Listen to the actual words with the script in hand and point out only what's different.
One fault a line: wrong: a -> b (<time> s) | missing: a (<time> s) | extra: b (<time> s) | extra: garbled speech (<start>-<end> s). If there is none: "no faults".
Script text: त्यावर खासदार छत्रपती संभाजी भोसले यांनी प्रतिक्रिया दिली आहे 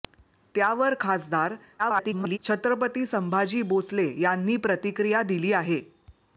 extra: garbled speech (1.8-2.4 s)